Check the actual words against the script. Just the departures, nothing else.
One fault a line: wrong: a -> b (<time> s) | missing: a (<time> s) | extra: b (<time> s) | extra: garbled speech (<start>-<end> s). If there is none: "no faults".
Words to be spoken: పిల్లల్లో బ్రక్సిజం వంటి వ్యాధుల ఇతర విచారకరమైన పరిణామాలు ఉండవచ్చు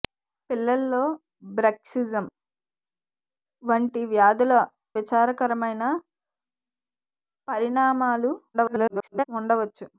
missing: ఇతర (4.5 s)
extra: garbled speech (8.5-9.2 s)